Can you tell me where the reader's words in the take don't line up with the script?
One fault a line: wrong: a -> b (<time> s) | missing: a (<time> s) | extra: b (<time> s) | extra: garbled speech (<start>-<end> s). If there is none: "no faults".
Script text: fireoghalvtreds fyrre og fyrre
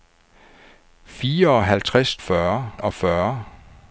no faults